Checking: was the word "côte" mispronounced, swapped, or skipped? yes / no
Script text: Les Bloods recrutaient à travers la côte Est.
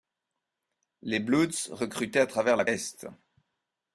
yes